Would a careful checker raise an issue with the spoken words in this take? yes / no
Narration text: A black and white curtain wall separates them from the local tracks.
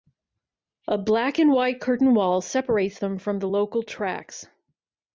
no